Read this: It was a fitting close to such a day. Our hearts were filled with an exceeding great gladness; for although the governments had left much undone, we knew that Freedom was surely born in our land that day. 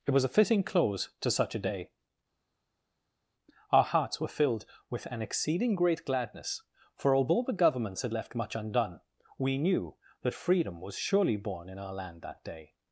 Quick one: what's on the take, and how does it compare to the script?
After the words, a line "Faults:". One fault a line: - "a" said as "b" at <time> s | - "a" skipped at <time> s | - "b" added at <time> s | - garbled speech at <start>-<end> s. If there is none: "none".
It was a fitting close to such a day. Our hearts were filled with an exceeding great gladness; for although the governments had left much undone, we knew that Freedom was surely born in our land that day.
Faults:
none